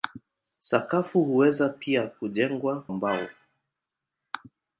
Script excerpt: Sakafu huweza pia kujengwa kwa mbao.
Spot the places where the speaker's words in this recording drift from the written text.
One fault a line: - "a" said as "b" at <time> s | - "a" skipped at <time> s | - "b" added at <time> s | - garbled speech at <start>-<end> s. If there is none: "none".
- "kwa" skipped at 2.8 s